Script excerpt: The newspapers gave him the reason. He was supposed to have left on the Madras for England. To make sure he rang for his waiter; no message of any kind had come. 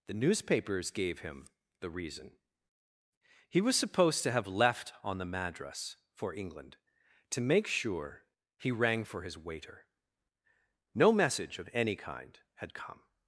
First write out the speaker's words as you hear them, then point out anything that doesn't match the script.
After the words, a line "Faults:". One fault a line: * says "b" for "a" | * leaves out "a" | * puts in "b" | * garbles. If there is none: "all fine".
The newspapers gave him the reason. He was supposed to have left on the Madras for England. To make sure he rang for his waiter; no message of any kind had come.
Faults:
all fine